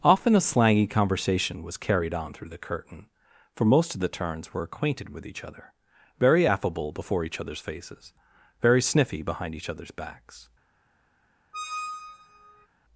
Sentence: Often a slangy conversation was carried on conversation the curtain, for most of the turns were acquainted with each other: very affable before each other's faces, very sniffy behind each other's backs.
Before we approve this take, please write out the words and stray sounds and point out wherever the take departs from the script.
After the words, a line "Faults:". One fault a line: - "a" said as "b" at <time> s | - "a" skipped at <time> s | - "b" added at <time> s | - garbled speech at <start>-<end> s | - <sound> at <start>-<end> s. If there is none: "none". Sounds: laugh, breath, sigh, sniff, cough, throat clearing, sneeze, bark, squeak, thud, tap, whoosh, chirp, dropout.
Often a slangy conversation was carried on through the curtain, for most of the turns were acquainted with each other: very affable before each other's faces, very sniffy behind each other's backs.
Faults:
- "conversation" said as "through" at 2.3 s
- squeak at 11.5-12.7 s